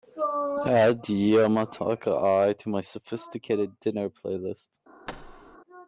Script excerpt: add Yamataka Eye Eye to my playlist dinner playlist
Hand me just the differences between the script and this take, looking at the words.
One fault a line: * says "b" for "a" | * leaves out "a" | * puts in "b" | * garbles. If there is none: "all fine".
* leaves out "Eye"
* says "sophisticated" for "playlist"